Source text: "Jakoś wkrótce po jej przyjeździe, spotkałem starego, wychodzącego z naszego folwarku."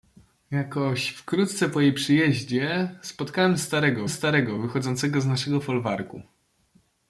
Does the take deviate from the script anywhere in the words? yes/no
yes